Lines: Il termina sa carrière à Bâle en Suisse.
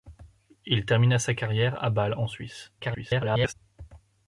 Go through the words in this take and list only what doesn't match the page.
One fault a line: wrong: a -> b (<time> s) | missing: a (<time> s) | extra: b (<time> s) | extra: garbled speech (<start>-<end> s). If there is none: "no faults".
extra: garbled speech (2.8-3.5 s)